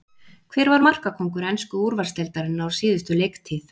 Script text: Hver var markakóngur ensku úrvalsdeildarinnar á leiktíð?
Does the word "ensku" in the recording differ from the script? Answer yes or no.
no